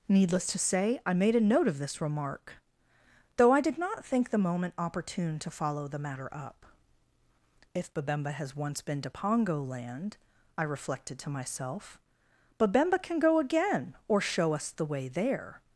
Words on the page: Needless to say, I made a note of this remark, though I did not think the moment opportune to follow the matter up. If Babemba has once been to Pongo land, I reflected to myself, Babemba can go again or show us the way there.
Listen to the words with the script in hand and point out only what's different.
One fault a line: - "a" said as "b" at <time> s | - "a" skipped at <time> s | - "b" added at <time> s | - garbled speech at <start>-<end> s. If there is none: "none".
none